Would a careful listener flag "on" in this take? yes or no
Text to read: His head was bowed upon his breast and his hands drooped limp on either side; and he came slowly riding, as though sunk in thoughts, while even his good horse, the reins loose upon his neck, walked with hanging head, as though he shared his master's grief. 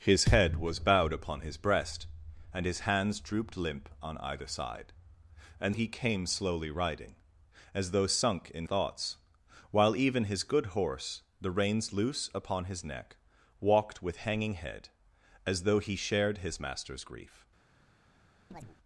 no